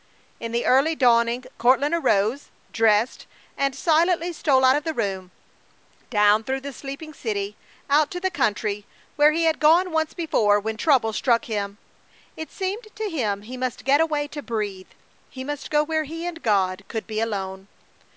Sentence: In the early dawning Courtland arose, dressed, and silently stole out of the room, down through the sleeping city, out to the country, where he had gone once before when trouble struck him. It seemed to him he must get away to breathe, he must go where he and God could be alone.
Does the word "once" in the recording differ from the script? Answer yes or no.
no